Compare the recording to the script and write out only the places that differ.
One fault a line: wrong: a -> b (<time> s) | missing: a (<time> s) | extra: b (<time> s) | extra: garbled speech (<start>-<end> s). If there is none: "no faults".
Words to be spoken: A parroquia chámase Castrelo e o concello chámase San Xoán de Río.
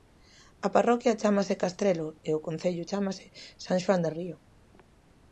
no faults